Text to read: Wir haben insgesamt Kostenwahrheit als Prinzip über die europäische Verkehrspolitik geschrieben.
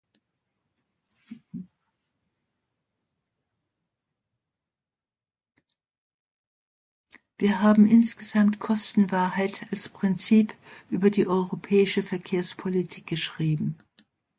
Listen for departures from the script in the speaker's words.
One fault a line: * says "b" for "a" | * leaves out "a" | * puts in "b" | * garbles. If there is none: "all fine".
all fine